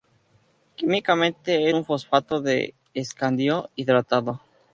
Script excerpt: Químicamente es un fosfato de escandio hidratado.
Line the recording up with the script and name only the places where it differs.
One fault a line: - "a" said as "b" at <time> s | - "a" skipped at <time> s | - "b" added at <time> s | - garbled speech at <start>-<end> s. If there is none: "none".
- "es" skipped at 1.7 s